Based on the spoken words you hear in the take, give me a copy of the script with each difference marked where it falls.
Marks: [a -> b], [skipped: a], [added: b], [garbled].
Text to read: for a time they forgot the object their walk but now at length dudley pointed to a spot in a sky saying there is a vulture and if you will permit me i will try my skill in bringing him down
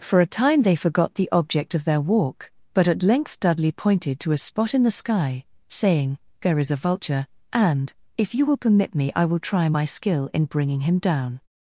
for a time they forgot the object [added: of] their walk but [skipped: now] at length dudley pointed to a spot in [a -> the] sky saying there is a vulture and if you will permit me i will try my skill in bringing him down